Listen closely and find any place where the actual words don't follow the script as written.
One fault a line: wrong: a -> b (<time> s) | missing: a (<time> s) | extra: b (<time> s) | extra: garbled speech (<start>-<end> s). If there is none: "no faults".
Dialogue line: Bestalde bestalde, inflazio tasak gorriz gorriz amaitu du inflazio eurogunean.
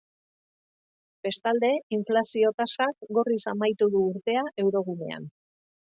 missing: bestalde (1.7 s)
missing: gorriz (3.4 s)
wrong: inflazio -> urtea (4.2 s)